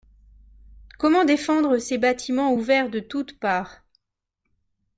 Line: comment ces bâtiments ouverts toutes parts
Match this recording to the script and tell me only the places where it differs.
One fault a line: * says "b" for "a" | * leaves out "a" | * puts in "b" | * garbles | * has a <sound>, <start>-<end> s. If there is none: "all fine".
* puts in "défendre"
* puts in "de"